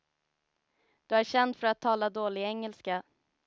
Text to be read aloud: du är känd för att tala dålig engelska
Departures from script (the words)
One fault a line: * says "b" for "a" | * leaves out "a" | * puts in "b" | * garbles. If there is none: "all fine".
all fine